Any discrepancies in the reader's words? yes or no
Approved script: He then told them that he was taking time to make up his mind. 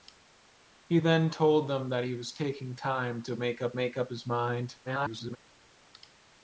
yes